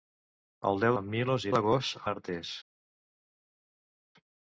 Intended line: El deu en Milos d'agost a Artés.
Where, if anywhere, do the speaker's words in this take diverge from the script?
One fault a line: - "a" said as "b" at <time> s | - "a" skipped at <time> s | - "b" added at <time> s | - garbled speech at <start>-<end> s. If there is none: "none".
none